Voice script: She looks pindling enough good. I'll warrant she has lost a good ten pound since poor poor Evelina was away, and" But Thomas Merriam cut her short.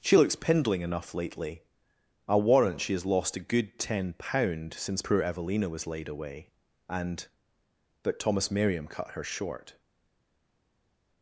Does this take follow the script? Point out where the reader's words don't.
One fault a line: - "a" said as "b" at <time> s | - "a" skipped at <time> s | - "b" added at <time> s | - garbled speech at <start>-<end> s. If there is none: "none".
- "good" said as "lately" at 1.1 s
- "poor" skipped at 5.2 s
- "laid" added at 5.9 s